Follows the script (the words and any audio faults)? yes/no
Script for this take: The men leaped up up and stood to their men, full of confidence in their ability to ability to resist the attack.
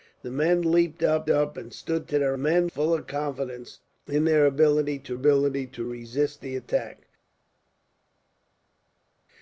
yes